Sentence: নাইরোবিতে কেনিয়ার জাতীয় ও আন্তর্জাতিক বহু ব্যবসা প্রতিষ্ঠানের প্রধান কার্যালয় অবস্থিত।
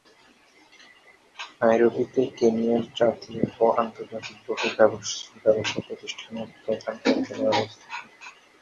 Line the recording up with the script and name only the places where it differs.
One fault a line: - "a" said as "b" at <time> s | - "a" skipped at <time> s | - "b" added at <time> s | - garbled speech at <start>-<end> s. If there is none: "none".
none